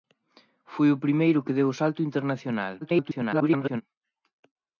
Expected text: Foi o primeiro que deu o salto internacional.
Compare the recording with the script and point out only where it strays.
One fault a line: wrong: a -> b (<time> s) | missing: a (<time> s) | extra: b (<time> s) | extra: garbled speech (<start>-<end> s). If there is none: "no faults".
extra: garbled speech (2.8-3.8 s)